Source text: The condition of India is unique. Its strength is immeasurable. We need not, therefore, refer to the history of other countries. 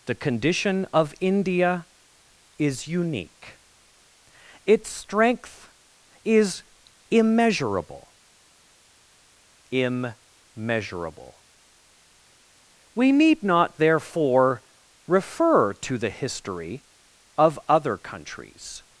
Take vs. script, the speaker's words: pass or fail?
fail